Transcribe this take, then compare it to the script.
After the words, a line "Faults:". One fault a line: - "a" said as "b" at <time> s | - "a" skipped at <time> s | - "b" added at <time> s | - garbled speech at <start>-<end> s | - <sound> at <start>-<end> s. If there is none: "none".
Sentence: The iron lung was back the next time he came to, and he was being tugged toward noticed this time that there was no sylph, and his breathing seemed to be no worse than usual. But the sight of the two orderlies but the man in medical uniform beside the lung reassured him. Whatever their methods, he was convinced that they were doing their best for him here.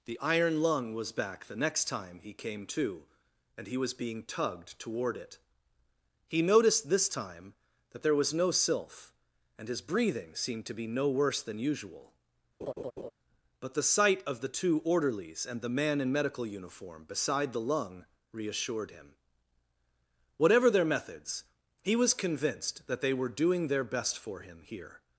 The iron lung was back the next time he came to, and he was being tugged toward it. He noticed this time that there was no sylph, and his breathing seemed to be no worse than usual. But the sight of the two orderlies and the man in medical uniform beside the lung reassured him. Whatever their methods, he was convinced that they were doing their best for him here.
Faults:
- "it He" added at 5.2 s
- laugh at 12.6-13.1 s
- "but" said as "and" at 15.5 s